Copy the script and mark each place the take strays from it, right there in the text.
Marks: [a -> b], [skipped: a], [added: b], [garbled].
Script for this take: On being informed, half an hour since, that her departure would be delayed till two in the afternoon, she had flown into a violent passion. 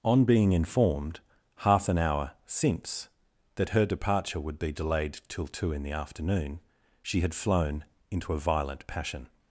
On being informed, half an hour since, that her departure would be delayed till two in the afternoon, she had flown into a violent passion.